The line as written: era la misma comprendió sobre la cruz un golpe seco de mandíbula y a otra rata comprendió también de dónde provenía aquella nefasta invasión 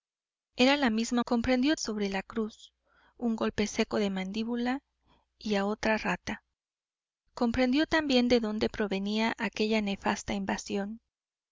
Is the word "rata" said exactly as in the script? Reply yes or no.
yes